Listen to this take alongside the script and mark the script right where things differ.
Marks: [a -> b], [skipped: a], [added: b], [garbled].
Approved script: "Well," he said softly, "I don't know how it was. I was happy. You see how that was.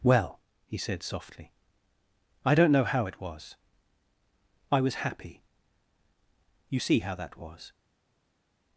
"Well," he said softly, "I don't know how it was. I was happy. You see how that was.